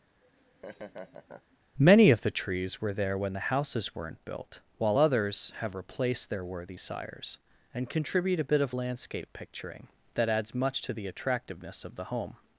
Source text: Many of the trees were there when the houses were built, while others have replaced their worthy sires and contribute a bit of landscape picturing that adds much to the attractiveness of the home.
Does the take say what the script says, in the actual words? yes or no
no